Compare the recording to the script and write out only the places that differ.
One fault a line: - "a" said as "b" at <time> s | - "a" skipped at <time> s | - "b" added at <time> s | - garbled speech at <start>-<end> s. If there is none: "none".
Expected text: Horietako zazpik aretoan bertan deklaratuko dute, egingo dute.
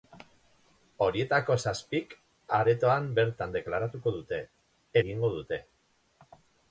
none